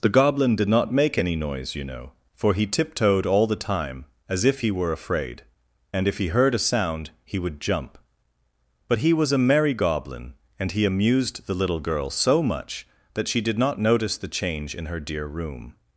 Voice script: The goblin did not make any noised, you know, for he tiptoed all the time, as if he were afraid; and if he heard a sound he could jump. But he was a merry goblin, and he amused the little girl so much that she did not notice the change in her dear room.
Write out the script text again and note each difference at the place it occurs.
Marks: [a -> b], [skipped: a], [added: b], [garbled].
The goblin did not make any [noised, -> noise] you know, for he tiptoed all the time, as if he were afraid; and if he heard a sound he [could -> would] jump. But he was a merry goblin, and he amused the little girl so much that she did not notice the change in her dear room.